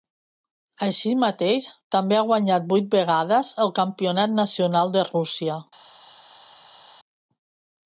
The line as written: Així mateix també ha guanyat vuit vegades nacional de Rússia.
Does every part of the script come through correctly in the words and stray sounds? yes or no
no